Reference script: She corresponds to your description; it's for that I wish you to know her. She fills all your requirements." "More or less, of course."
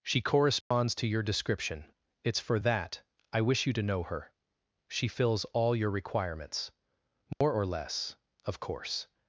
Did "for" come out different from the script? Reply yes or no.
no